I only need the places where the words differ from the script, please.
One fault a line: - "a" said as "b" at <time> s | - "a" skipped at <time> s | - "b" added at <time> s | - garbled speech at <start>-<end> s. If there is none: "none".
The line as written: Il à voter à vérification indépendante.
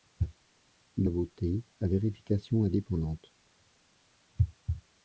none